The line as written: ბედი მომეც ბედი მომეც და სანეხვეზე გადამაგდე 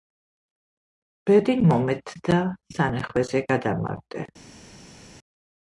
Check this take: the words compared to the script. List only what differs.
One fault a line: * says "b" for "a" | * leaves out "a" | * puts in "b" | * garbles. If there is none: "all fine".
* leaves out "ბედი მომეც"